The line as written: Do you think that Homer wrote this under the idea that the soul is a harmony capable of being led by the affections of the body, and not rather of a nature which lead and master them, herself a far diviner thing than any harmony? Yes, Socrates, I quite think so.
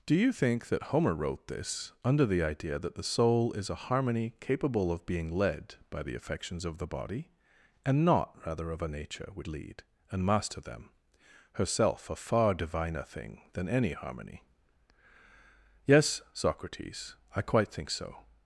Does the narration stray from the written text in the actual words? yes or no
no